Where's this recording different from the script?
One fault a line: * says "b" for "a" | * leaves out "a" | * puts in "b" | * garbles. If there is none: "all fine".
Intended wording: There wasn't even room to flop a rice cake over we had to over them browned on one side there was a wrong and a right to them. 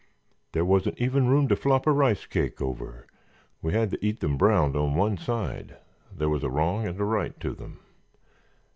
* says "eat" for "over"